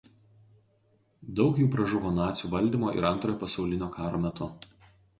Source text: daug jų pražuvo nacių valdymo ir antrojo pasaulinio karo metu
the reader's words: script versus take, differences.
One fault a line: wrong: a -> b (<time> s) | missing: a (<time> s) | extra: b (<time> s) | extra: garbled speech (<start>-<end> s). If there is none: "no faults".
no faults